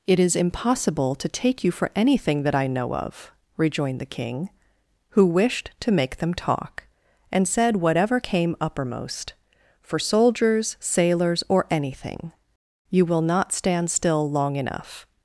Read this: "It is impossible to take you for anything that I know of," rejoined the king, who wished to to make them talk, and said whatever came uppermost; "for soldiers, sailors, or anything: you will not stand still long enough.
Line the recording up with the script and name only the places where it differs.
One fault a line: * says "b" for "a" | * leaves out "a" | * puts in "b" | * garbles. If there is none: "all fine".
* leaves out "to"